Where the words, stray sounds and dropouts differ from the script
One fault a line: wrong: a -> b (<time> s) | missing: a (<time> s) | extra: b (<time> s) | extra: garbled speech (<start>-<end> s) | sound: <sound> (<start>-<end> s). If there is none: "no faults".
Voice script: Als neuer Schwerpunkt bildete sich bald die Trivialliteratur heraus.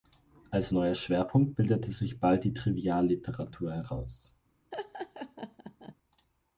sound: laugh (4.7-5.9 s)